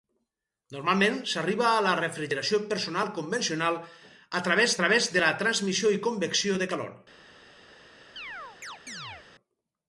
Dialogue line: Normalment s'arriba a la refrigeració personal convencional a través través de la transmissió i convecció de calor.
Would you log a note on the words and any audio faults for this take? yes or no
yes